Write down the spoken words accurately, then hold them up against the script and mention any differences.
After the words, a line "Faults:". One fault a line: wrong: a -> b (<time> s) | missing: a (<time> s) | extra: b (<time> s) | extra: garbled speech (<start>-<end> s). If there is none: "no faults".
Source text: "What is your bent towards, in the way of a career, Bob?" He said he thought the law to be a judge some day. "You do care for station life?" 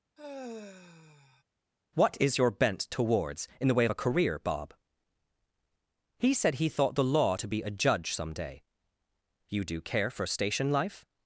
"What is your bent towards, in the way of a career, Bob?" He said he thought the law to be a judge some day. "You do care for station life?"
Faults:
no faults